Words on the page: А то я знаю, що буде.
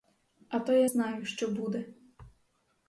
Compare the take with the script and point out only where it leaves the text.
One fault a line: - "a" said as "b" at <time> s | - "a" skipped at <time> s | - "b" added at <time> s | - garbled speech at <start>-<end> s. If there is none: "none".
none